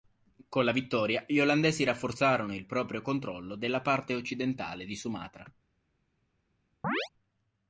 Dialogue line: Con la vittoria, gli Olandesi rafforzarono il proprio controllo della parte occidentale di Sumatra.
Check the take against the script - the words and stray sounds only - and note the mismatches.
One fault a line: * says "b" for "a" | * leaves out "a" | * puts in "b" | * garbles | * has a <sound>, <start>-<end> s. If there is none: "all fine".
* has a chirp, 6.8-7.1 s